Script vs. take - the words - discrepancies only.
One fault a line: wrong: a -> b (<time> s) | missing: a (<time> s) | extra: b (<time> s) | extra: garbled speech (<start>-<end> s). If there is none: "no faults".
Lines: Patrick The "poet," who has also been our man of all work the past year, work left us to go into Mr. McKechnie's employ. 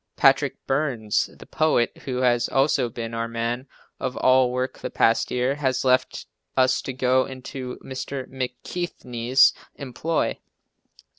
extra: Burns (0.7 s)
wrong: work -> has (5.5 s)